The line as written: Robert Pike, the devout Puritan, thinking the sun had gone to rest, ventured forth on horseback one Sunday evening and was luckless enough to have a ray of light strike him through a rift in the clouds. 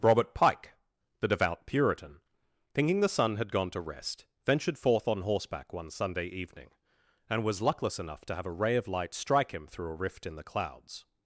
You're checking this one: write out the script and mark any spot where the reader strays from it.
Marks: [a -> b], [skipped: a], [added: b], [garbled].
Robert Pike, the devout Puritan, thinking the sun had gone to rest, ventured forth on horseback one Sunday evening and was luckless enough to have a ray of light strike him through a rift in the clouds.